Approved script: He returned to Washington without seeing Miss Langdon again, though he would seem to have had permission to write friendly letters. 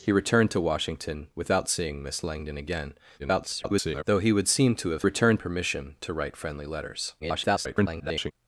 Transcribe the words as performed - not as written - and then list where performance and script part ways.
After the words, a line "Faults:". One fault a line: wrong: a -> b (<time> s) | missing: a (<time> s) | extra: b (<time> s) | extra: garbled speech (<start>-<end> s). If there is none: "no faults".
He returned to Washington without seeing Miss Langdon again, [garbled] though he would seem to have returned permission to write friendly letters. [garbled]
Faults:
extra: garbled speech (3.2-4.0 s)
wrong: had -> returned (5.0 s)
extra: garbled speech (7.2-8.3 s)